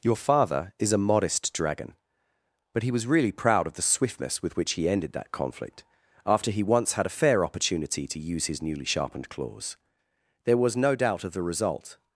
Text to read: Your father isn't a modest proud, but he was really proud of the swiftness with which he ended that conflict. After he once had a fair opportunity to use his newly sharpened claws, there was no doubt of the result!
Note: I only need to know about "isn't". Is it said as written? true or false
false